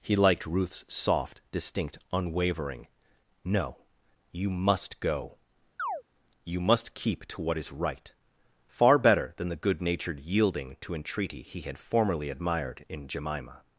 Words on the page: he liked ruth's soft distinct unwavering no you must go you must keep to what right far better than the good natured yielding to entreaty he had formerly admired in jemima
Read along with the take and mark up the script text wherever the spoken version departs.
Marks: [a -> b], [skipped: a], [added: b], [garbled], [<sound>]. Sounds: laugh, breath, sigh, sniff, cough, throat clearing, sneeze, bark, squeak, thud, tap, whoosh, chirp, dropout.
he liked ruth's soft distinct unwavering no you must go [chirp] you must keep to what [added: is] right far better than the good natured yielding to entreaty he had formerly admired in jemima